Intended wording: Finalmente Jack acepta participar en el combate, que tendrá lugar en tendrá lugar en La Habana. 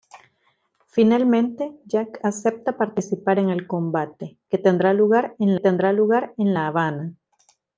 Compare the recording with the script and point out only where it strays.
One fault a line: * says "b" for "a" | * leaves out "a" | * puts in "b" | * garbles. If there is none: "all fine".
all fine